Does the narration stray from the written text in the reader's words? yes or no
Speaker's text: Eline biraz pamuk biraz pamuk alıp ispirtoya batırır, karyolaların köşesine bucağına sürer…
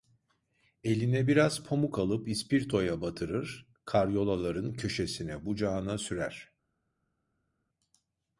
yes